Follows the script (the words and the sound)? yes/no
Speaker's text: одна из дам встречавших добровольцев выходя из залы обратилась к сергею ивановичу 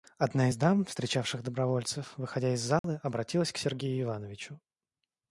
no